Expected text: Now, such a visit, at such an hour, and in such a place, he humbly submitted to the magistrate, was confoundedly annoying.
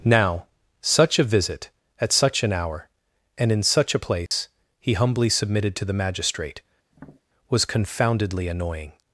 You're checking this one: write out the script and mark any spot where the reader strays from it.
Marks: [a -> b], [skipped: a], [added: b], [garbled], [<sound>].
Now, such a visit, at such an hour, and in such a place, [dropout] he humbly submitted to the magistrate, [tap] was confoundedly annoying.